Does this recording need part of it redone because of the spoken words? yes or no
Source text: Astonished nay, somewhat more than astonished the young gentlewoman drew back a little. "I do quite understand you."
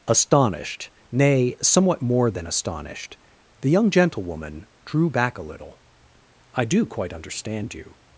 no